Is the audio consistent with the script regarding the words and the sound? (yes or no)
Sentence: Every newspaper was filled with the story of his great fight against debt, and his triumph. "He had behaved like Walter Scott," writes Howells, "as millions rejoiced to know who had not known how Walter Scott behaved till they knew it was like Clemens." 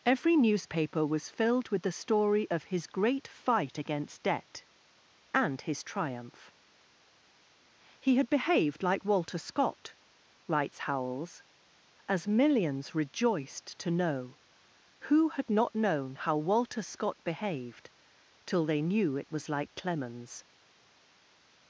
yes